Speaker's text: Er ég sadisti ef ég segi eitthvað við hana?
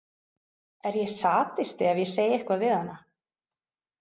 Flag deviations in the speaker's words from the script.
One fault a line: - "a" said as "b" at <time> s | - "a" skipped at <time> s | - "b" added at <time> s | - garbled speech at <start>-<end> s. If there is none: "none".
none